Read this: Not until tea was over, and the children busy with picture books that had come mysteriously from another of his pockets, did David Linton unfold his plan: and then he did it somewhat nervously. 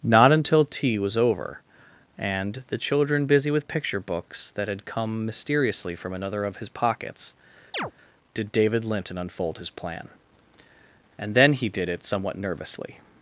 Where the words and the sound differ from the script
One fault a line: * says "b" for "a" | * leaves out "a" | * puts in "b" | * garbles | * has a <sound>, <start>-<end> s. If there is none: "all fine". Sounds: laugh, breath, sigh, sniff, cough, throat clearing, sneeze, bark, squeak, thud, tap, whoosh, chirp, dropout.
* has a chirp, 7.7-7.9 s